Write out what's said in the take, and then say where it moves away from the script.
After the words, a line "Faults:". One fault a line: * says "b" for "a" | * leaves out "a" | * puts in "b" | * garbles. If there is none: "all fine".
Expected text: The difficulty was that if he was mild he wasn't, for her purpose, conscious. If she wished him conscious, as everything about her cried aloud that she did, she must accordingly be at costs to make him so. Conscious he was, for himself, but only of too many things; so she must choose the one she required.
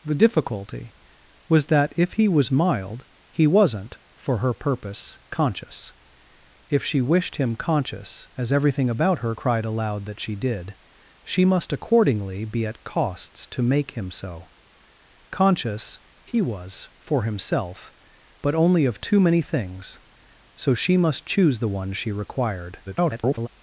The difficulty was that if he was mild he wasn't, for her purpose, conscious. If she wished him conscious, as everything about her cried aloud that she did, she must accordingly be at costs to make him so. Conscious he was, for himself, but only of too many things; so she must choose the one she required. [garbled]
Faults:
* garbles